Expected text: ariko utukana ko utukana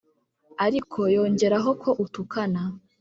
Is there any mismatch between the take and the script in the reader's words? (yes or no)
yes